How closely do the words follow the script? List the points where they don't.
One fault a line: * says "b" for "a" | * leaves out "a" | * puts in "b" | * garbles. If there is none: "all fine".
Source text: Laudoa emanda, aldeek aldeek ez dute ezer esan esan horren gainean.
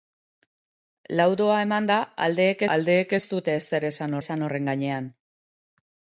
all fine